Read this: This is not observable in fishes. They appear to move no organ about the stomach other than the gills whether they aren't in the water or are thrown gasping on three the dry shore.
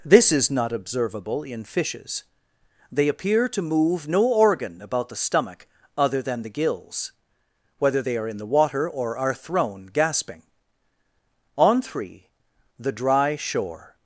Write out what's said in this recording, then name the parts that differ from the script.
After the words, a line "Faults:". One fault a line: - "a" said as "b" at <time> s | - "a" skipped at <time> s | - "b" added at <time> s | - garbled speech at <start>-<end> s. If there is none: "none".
This is not observable in fishes. They appear to move no organ about the stomach other than the gills whether they are in the water or are thrown gasping on three the dry shore.
Faults:
- "aren't" said as "are" at 8.2 s